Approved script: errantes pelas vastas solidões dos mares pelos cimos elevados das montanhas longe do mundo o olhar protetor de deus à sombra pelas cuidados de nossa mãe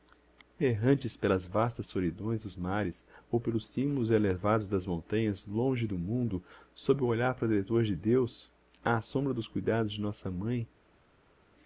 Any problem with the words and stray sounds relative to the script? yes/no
yes